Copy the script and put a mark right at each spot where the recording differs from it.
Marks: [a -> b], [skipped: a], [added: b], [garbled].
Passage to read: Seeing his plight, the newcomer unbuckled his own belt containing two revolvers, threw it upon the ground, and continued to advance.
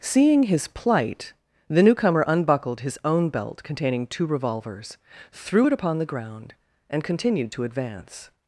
Seeing his plight, the newcomer unbuckled his own belt containing two revolvers, threw it upon the ground, and continued to advance.